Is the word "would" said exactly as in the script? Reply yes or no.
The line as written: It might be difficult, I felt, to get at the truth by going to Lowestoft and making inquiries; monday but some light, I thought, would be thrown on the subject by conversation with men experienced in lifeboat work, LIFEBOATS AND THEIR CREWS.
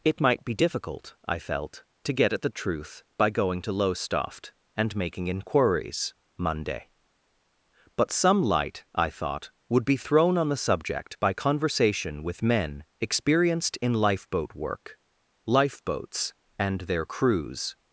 yes